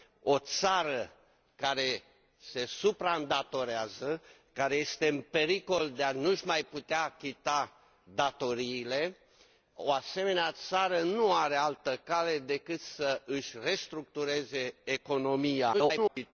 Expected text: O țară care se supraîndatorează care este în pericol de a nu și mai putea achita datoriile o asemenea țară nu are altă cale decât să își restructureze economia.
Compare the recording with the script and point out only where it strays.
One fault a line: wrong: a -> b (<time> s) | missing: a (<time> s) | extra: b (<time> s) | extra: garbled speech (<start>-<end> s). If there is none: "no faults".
extra: garbled speech (15.7-16.3 s)